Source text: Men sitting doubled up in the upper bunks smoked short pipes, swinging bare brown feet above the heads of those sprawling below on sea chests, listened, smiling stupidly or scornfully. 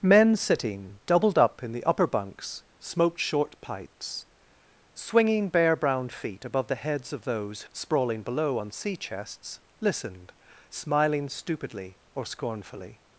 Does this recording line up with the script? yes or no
yes